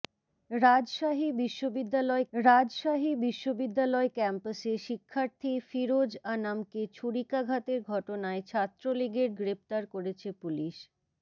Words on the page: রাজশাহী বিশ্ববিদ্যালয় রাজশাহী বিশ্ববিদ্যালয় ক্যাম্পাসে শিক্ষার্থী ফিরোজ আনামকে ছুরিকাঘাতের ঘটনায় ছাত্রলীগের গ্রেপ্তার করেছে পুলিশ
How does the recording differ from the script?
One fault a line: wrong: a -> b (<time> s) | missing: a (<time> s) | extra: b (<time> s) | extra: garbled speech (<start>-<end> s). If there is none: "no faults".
no faults